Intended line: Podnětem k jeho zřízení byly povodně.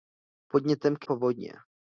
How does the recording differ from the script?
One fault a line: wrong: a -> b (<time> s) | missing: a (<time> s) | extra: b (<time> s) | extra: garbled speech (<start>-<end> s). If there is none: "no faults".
missing: jeho zřízení byly (1.1 s)